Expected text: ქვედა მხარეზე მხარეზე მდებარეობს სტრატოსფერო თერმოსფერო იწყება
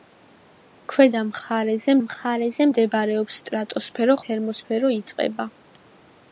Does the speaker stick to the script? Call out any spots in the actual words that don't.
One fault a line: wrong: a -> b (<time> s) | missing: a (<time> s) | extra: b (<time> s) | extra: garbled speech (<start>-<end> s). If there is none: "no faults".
no faults